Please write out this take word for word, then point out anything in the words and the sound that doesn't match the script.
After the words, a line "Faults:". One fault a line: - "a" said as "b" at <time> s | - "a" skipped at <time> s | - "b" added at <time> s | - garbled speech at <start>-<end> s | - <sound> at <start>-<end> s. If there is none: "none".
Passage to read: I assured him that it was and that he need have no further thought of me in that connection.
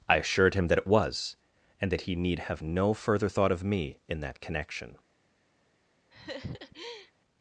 I assured him that it was and that he need have no further thought of me in that connection.
Faults:
- laugh at 6.1-7.1 s